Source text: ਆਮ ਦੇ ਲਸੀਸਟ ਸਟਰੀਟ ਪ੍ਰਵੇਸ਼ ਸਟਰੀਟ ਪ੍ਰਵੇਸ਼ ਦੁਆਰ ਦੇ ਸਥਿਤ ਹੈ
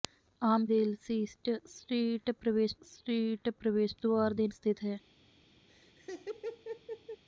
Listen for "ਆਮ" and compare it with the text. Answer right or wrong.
right